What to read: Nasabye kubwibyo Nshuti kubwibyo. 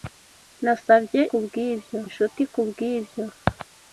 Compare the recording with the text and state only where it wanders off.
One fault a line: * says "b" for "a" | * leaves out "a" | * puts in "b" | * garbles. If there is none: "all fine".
all fine